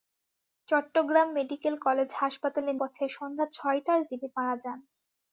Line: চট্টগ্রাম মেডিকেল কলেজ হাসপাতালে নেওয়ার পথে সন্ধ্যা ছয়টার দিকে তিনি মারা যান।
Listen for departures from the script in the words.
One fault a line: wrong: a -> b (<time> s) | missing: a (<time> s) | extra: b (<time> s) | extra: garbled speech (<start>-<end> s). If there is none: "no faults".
missing: নেওয়ার (2.7 s)
missing: দিকে (4.0 s)